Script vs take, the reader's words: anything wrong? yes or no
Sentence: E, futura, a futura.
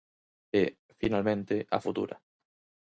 yes